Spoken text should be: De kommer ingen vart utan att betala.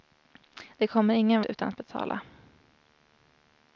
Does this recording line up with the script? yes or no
no